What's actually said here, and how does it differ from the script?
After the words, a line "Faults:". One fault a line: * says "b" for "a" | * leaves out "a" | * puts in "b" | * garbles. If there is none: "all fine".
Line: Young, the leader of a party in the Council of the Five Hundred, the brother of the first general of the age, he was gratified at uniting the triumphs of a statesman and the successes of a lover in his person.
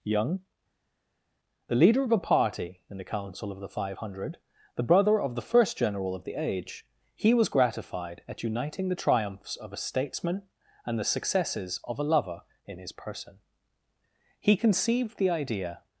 Young, the leader of a party in the Council of the Five Hundred, the brother of the first general of the age, he was gratified at uniting the triumphs of a statesman and the successes of a lover in his person. "He conceived the idea
Faults:
* puts in "He conceived the idea"